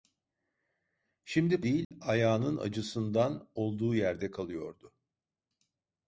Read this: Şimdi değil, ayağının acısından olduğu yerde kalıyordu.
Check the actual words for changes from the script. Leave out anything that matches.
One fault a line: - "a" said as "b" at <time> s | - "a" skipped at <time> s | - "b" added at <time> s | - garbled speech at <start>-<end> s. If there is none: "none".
none